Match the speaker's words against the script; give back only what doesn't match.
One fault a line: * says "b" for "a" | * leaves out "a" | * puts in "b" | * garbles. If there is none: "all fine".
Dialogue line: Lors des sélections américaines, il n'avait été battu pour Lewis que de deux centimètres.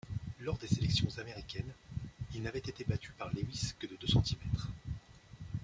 * says "par" for "pour"